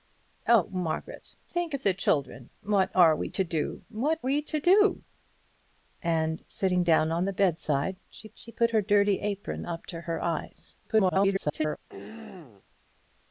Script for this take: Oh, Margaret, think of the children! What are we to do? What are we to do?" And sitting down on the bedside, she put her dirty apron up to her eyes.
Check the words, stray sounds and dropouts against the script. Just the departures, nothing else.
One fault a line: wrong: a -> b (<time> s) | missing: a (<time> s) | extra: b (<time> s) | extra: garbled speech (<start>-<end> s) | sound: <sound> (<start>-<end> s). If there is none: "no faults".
missing: are (4.2 s)
extra: she (8.3 s)
extra: garbled speech (10.8-11.8 s)
sound: throat clearing (11.9-12.6 s)